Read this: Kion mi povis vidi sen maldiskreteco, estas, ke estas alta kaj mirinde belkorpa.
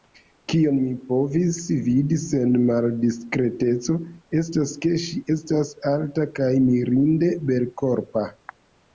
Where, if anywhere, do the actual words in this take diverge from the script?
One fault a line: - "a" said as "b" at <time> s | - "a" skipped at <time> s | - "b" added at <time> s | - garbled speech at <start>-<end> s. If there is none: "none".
- "ŝi" added at 5.1 s